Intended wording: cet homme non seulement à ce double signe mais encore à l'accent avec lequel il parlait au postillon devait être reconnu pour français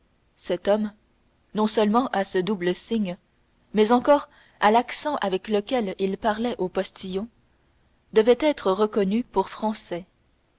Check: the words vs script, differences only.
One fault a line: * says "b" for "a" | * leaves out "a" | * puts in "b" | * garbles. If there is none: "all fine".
all fine